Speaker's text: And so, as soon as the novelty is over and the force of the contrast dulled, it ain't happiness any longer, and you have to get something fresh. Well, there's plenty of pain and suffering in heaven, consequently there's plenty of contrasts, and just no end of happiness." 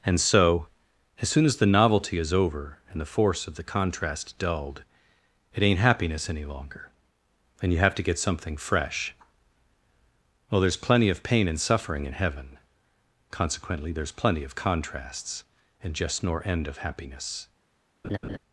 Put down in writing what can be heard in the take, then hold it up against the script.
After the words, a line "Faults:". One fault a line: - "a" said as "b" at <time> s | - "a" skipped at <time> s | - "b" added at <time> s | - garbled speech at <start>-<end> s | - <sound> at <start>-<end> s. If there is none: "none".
And so, as soon as the novelty is over and the force of the contrast dulled, it ain't happiness any longer, and you have to get something fresh. Well, there's plenty of pain and suffering in heaven, consequently there's plenty of contrasts, and just nor end of happiness."
Faults:
- "no" said as "nor" at 16.2 s
- laugh at 18.0-18.4 s